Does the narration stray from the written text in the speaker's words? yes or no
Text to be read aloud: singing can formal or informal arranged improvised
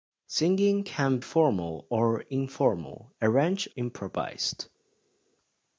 no